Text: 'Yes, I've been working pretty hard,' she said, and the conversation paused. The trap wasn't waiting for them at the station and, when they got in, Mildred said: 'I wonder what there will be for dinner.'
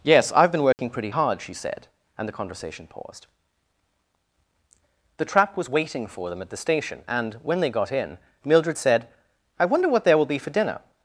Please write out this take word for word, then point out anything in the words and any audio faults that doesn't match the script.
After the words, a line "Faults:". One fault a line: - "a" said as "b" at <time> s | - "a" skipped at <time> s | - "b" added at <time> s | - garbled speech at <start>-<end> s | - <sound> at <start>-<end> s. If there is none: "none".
'Yes, I've been working pretty hard,' she said, and the conversation paused. The trap was waiting for them at the station and, when they got in, Mildred said: 'I wonder what there will be for dinner.'
Faults:
- dropout at 0.7-0.8 s
- "wasn't" said as "was" at 5.6 s